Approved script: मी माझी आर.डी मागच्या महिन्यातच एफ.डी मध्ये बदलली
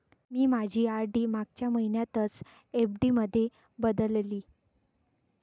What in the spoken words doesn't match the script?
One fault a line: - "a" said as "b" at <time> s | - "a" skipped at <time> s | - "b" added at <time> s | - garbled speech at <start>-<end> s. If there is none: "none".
none